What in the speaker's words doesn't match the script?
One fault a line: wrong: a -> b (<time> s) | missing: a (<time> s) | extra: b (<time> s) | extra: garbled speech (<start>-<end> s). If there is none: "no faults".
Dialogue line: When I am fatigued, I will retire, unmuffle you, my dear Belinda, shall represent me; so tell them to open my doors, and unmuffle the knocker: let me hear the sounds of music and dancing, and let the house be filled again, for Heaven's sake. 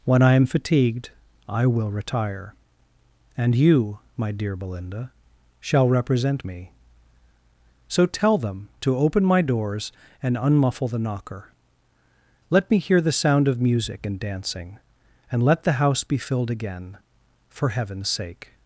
wrong: unmuffle -> and (3.4 s)
wrong: sounds -> sound (13.1 s)